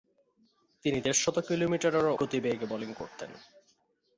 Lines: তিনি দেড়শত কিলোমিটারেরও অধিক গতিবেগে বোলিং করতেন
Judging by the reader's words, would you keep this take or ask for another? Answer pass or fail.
fail